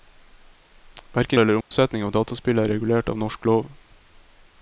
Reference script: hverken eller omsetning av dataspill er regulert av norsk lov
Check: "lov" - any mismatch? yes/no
no